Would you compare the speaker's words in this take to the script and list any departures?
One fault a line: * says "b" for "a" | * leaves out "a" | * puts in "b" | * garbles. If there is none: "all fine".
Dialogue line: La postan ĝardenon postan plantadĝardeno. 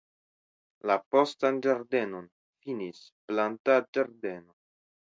* says "finis" for "postan"